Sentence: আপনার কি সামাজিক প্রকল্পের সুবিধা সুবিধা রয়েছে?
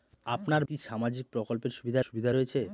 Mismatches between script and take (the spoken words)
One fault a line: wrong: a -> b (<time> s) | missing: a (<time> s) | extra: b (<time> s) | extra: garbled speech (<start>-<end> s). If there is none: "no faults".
no faults